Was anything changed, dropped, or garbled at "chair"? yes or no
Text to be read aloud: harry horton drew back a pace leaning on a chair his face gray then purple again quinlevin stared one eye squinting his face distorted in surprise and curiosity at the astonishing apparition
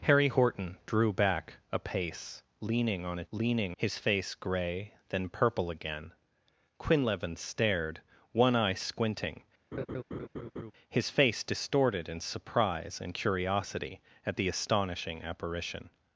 yes